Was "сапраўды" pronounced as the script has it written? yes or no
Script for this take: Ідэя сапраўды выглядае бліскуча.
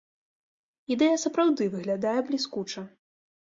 yes